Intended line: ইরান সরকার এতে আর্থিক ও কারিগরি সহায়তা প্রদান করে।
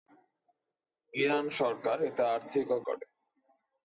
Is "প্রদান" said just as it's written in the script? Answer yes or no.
no